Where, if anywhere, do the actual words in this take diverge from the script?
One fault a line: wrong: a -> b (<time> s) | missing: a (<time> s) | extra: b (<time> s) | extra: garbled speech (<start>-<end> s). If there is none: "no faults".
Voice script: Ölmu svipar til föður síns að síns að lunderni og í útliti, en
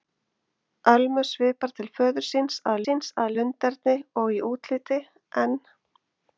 no faults